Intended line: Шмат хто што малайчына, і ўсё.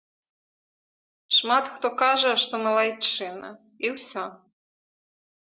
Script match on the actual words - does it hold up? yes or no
no